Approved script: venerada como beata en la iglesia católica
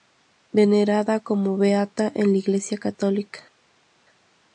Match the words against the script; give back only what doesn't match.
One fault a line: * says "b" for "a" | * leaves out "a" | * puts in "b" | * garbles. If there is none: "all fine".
all fine